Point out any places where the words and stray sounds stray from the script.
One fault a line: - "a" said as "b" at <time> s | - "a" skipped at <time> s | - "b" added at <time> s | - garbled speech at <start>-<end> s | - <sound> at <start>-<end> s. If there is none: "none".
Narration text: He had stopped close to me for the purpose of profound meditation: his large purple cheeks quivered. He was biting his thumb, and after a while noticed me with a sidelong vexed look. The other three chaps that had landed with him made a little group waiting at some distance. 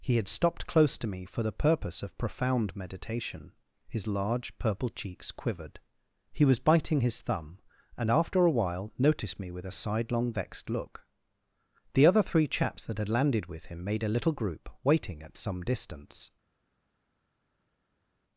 none